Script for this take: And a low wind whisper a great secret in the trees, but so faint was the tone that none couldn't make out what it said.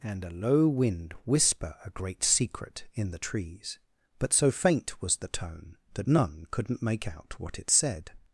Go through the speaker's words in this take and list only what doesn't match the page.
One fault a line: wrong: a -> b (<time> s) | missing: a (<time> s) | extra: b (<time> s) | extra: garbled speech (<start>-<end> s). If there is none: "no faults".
no faults